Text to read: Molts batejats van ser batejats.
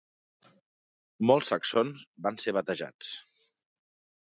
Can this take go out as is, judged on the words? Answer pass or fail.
fail